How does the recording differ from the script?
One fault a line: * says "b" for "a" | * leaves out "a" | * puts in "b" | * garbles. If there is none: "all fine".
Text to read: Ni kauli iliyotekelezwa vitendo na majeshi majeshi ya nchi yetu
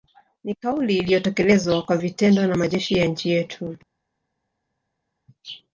* puts in "kwa"
* leaves out "majeshi"